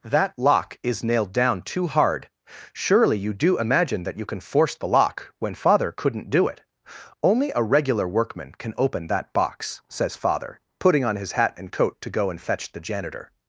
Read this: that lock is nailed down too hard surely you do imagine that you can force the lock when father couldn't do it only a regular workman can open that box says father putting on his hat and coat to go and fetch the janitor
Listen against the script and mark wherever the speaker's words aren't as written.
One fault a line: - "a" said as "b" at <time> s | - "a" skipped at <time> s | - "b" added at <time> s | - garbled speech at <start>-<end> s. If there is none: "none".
none